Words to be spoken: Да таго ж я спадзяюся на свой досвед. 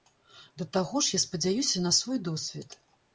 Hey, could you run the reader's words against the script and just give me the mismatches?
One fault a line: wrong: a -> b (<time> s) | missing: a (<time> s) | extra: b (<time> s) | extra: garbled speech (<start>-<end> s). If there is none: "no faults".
no faults